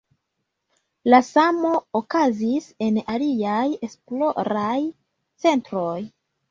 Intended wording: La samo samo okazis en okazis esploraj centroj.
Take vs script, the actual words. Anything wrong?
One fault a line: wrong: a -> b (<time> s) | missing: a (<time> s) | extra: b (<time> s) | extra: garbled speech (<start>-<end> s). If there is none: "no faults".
missing: samo (1.7 s)
wrong: okazis -> aliaj (3.2 s)